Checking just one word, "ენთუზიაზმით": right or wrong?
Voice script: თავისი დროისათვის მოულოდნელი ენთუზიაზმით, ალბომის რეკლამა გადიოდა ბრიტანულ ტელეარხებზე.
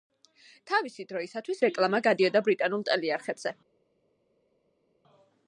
wrong